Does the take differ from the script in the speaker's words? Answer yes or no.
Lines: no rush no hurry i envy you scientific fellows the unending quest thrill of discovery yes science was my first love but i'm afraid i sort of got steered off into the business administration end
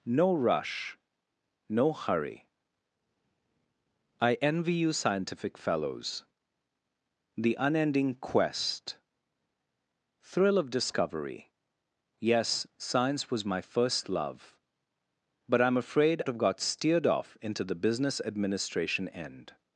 yes